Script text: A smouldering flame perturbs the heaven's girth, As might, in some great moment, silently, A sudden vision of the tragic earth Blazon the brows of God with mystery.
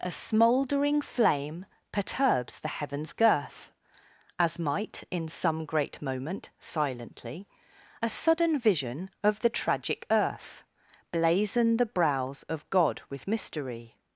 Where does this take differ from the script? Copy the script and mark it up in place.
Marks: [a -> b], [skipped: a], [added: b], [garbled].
A smouldering flame perturbs the heaven's girth, As might, in some great moment, silently, A sudden vision of the tragic earth Blazon the brows of God with mystery.